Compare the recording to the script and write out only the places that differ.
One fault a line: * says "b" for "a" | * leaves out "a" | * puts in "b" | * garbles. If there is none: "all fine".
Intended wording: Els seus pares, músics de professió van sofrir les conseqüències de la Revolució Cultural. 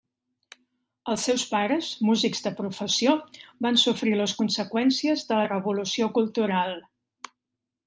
all fine